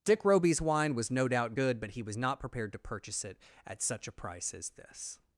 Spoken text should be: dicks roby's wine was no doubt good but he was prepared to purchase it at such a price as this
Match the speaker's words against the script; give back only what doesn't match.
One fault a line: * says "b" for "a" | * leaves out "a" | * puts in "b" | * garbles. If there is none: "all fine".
* says "dick" for "dicks"
* puts in "not"